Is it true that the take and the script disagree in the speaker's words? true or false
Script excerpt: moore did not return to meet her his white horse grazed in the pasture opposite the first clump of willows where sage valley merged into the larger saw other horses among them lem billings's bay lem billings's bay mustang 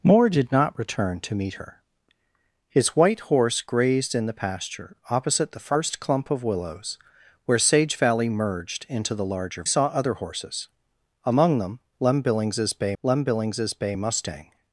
false